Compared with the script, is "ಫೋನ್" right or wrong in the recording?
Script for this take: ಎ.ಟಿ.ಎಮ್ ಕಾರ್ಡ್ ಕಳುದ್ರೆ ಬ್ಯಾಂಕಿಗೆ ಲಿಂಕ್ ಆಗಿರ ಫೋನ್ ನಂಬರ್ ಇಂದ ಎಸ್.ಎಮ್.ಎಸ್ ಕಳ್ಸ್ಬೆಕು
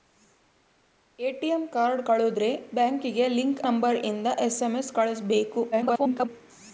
wrong